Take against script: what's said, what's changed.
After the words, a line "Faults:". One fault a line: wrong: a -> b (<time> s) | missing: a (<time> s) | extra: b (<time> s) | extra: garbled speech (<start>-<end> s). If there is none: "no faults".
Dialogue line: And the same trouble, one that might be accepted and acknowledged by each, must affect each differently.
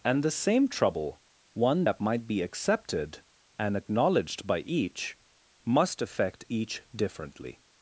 And the same trouble, one that might be accepted and acknowledged by each, must affect each differently.
Faults:
no faults